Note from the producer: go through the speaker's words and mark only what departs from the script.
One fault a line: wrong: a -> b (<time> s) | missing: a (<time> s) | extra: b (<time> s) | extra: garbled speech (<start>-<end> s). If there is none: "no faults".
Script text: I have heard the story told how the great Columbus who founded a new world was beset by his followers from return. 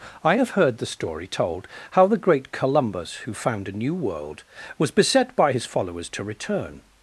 wrong: founded -> found (3.3 s)
wrong: from -> to (6.1 s)